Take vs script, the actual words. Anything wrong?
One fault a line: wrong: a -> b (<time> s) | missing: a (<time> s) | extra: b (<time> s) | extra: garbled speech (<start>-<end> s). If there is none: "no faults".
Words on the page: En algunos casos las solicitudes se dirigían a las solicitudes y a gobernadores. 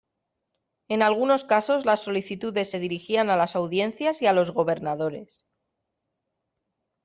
wrong: solicitudes -> audiencias (3.6 s)
extra: los (4.3 s)